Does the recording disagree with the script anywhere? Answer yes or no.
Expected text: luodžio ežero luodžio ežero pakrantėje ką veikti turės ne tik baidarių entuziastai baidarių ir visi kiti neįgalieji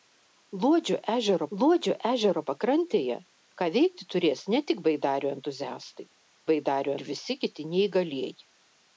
no